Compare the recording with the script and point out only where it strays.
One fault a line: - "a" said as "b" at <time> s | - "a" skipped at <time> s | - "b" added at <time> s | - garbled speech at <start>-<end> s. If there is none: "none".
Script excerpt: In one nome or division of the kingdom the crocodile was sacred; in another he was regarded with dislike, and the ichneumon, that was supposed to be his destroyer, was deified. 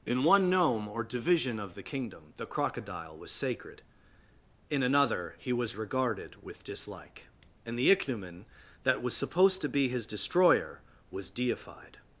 none